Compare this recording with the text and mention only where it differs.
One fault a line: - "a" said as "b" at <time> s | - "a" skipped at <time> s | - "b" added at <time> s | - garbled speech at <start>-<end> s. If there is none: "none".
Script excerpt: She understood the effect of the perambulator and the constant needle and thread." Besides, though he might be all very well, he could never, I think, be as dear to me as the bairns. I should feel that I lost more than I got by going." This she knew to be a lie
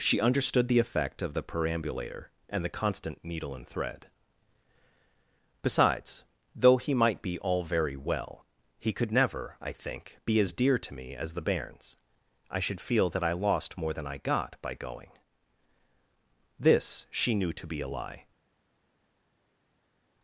none